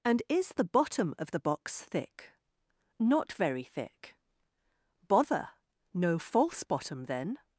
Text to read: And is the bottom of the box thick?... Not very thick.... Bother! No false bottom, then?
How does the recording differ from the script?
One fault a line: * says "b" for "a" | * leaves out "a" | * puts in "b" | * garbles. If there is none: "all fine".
all fine